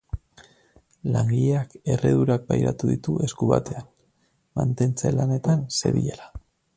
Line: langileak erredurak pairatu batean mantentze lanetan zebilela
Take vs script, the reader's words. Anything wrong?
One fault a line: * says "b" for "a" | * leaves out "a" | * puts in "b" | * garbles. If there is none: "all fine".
* puts in "ditu esku"